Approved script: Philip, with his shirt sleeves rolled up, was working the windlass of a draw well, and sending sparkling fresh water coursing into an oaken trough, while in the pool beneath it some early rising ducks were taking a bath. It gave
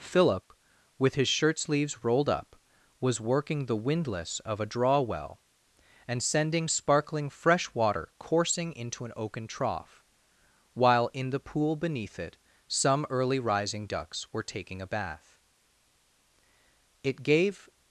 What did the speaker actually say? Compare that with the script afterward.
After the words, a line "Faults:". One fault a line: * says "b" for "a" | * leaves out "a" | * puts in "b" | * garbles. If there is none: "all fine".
Philip, with his shirt sleeves rolled up, was working the windlass of a draw well, and sending sparkling fresh water coursing into an oaken trough, while in the pool beneath it some early rising ducks were taking a bath. It gave
Faults:
all fine